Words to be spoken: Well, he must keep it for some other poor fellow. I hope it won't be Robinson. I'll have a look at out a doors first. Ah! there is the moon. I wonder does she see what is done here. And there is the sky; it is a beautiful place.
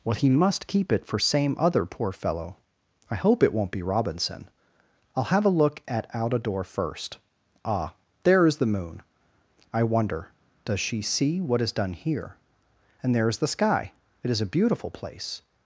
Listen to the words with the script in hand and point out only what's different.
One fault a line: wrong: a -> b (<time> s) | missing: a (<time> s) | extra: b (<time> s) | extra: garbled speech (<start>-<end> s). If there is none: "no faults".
wrong: some -> same (1.2 s)
wrong: doors -> door (6.4 s)